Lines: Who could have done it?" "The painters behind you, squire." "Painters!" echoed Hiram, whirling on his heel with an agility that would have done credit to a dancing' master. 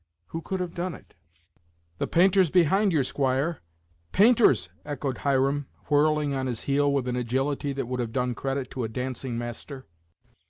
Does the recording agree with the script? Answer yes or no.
yes